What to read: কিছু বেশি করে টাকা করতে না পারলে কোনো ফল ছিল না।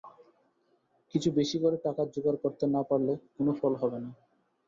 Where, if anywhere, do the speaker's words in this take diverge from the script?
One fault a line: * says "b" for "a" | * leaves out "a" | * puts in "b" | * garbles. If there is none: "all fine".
* puts in "জোগাড়"
* says "হবে" for "ছিল"